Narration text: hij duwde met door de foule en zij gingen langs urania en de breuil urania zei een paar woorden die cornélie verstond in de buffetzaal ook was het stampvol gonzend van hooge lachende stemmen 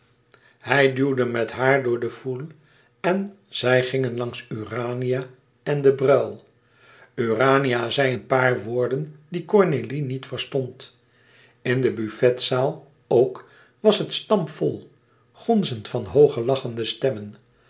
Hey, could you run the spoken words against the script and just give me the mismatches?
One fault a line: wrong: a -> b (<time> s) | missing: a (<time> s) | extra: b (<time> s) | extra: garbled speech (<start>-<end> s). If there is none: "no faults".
extra: haar (1.5 s)
extra: niet (10.0 s)